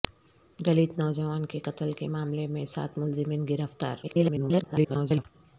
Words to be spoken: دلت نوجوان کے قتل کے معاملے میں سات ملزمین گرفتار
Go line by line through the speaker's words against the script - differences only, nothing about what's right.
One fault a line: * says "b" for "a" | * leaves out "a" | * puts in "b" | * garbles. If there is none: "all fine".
* garbles